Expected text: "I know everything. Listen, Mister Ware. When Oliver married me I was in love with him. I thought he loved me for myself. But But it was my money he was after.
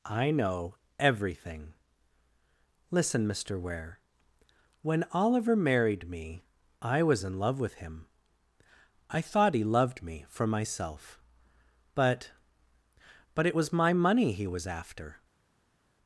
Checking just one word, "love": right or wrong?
right